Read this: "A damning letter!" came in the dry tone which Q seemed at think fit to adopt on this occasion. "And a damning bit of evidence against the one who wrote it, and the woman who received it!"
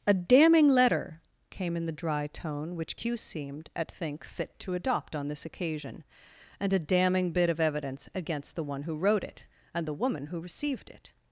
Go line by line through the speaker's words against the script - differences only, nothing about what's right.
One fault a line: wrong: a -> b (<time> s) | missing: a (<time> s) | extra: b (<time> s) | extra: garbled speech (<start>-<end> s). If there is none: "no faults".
no faults